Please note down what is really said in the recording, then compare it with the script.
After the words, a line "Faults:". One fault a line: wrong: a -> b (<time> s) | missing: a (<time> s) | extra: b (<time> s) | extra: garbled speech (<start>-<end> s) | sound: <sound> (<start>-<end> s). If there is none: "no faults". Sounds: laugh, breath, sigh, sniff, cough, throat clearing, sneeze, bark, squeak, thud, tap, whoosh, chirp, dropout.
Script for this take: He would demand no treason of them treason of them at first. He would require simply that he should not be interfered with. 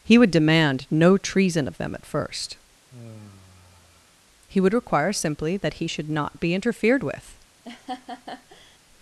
He would demand no treason of them at first. He would require simply that he should not be interfered with.
Faults:
missing: treason of them (1.9 s)
sound: sigh (2.9-4.2 s)
sound: laugh (7.6-8.8 s)